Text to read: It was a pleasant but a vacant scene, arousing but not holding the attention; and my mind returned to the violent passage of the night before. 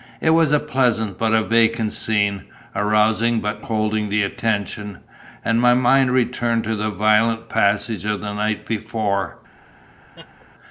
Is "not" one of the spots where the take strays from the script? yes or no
yes